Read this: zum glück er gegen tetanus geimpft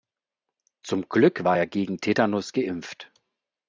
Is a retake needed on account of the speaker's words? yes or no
yes